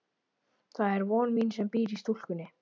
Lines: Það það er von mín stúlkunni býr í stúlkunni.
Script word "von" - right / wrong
right